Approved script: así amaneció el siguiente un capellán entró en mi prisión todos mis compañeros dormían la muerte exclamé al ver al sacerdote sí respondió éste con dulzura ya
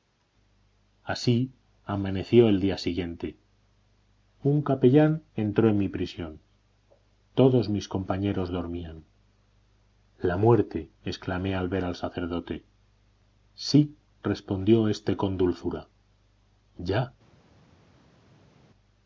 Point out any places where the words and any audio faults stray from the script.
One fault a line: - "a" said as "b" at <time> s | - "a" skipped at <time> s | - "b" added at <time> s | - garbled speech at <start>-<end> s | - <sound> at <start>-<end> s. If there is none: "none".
- "día" added at 2.6 s